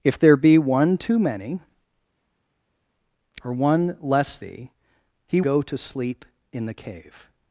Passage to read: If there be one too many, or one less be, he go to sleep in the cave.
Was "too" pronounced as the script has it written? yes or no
yes